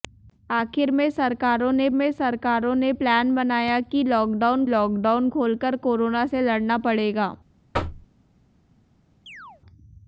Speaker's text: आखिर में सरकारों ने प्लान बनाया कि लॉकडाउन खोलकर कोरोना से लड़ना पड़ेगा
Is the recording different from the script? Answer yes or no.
yes